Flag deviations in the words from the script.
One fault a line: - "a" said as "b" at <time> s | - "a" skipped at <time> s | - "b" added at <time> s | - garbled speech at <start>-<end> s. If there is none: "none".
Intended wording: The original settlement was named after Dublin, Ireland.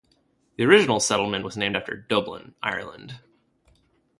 none